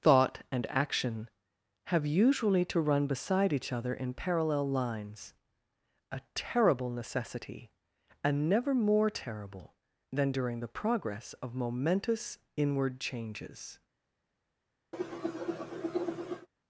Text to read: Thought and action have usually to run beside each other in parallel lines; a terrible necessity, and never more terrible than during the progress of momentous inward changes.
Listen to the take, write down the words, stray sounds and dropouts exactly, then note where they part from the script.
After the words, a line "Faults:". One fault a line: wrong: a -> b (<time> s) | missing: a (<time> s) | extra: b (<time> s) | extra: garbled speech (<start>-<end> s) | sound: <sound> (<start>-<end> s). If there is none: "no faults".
Thought and action have usually to run beside each other in parallel lines; a terrible necessity, and never more terrible than during the progress of momentous inward changes.
Faults:
sound: cough (14.9-16.5 s)